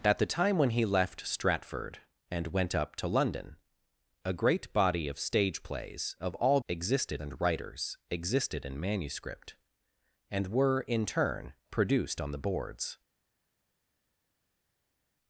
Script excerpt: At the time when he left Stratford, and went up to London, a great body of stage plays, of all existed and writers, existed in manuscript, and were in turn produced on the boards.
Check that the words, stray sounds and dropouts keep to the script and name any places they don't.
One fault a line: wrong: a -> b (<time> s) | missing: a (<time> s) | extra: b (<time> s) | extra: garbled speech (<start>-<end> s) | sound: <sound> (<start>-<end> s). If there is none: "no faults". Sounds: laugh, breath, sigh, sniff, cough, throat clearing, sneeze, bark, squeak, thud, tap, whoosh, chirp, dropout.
no faults